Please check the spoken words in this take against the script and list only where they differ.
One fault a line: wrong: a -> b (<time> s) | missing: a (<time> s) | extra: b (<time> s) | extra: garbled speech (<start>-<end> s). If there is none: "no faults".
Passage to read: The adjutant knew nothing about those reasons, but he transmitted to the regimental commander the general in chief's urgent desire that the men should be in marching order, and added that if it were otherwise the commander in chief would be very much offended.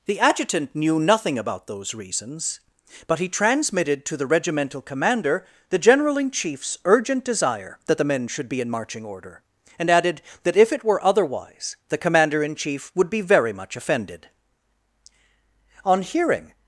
extra: On hearing (15.8 s)